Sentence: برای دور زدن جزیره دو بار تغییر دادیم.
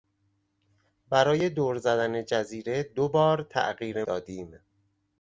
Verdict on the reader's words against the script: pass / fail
pass